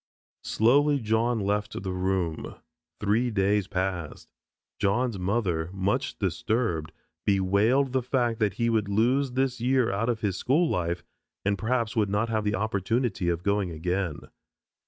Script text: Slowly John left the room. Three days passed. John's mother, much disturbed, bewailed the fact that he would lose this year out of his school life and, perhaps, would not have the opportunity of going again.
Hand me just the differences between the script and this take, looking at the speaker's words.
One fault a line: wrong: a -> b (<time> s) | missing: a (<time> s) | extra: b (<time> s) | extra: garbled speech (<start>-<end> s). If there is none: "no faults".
no faults